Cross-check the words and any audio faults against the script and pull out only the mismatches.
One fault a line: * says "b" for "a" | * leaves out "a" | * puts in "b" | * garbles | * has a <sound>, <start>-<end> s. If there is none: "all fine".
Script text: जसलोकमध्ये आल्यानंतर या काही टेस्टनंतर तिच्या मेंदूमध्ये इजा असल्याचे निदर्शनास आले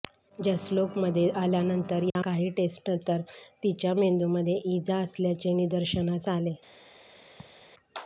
* has a dropout, 2.1-2.2 s
* has a laugh, 7.4-7.7 s